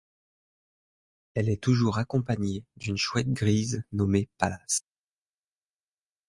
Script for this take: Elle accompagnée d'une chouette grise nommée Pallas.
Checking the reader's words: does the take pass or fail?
fail